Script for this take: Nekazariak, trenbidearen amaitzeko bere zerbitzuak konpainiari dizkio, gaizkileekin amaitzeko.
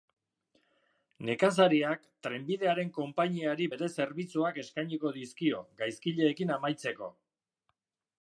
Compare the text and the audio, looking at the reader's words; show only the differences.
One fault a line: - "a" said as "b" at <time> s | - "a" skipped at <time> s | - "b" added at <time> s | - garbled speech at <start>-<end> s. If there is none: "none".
- "amaitzeko" said as "konpainiari" at 3.0 s
- "konpainiari" said as "eskainiko" at 4.6 s